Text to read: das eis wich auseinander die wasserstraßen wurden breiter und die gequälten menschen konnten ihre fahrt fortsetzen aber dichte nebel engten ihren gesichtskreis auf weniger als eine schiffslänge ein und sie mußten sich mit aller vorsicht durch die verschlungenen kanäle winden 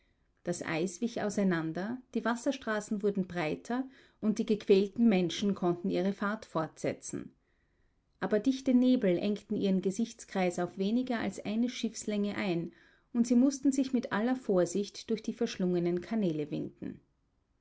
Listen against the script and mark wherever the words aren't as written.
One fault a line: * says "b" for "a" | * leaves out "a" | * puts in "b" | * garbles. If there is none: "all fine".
all fine